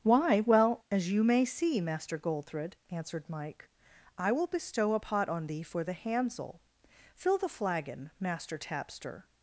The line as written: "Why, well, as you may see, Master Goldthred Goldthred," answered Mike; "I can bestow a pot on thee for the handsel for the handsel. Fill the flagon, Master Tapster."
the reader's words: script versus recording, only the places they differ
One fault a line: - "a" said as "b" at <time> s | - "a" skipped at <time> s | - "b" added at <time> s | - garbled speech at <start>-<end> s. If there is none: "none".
- "Goldthred" skipped at 2.7 s
- "can" said as "will" at 4.3 s
- "for the handsel" skipped at 6.6 s